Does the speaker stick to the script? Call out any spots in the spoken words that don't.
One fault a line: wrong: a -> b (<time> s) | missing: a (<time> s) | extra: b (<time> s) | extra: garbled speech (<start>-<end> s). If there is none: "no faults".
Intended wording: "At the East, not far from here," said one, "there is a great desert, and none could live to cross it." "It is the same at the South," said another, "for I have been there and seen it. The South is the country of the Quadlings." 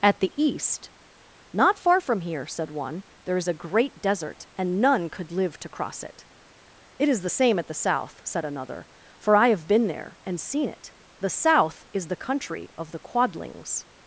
no faults